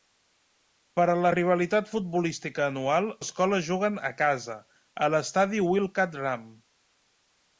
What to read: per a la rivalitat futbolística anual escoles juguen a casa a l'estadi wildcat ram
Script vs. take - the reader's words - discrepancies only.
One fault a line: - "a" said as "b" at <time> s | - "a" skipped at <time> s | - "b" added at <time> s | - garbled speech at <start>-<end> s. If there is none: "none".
none